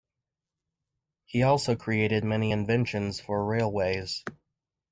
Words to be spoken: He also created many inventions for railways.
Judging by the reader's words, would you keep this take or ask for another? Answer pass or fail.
pass